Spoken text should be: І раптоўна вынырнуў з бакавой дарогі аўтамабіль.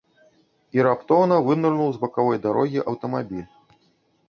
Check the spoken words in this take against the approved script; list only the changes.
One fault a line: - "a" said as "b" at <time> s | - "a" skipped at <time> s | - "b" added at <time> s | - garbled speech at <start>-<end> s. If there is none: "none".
none